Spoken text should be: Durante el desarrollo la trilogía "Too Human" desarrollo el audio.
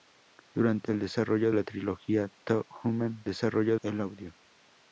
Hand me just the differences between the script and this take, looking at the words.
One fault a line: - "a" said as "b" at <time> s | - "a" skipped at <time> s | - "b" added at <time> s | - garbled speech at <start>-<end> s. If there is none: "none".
none